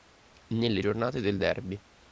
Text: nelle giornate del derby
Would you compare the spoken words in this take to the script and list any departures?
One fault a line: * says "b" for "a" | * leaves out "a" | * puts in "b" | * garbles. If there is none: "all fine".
all fine